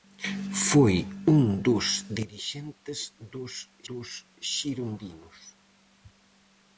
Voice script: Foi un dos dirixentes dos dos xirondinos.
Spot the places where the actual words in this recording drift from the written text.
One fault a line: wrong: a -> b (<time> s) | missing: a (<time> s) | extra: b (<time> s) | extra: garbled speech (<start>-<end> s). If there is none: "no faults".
no faults